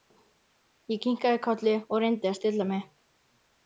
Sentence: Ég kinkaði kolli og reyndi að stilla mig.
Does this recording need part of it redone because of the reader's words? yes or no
no